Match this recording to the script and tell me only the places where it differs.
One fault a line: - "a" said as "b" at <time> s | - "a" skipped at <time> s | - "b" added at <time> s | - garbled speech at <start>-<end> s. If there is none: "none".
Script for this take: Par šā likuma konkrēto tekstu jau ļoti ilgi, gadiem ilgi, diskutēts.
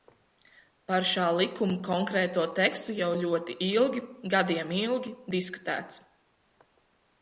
none